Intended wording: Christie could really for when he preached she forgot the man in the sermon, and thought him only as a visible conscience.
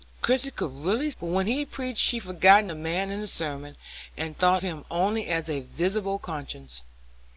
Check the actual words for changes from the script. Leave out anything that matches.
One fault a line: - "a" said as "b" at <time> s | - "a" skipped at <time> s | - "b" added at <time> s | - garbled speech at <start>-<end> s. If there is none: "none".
none